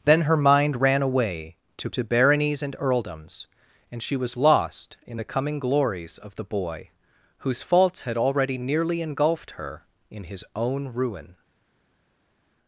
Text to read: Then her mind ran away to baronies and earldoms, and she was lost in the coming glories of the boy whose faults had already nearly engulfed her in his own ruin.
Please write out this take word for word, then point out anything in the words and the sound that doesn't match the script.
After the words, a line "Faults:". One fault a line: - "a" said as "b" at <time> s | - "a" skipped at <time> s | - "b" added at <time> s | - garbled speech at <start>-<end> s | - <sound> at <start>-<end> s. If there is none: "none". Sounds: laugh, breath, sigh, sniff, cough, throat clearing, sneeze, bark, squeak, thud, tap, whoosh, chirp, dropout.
Then her mind ran away to to baronies and earldoms, and she was lost in the coming glories of the boy whose faults had already nearly engulfed her in his own ruin.
Faults:
- "to" added at 1.9 s